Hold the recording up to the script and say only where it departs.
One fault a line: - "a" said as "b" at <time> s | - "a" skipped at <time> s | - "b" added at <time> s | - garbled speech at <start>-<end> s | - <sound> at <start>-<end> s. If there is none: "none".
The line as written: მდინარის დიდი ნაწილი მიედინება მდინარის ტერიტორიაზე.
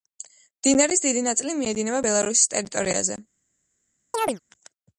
- "მდინარის" said as "ბელარუსის" at 2.1 s
- chirp at 4.1-4.4 s